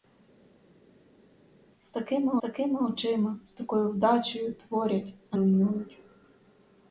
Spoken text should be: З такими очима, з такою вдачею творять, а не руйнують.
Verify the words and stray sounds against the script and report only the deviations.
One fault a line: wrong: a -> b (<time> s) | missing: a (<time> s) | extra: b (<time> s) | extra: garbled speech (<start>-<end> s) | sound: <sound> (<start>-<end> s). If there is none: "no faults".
extra: такими (2.4 s)
missing: не (5.4 s)